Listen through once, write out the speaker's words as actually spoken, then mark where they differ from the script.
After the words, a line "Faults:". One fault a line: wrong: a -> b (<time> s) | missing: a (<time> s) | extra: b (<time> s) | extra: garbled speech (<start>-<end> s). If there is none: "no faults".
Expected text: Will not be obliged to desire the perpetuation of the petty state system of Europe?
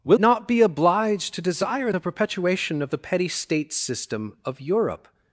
Will not be obliged to desire the perpetuation of the petty state system of Europe?
Faults:
no faults